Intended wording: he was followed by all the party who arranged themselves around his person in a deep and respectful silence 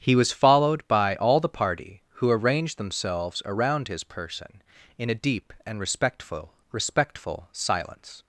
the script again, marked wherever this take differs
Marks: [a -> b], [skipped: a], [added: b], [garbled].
he was followed by all the party who arranged themselves around his person in a deep and respectful [added: respectful] silence